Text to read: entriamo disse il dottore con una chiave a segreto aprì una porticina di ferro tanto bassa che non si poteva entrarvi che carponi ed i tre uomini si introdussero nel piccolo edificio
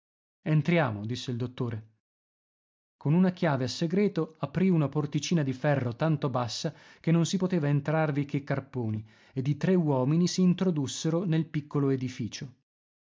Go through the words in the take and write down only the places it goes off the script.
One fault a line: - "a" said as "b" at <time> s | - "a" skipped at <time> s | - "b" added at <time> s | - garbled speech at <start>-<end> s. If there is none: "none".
none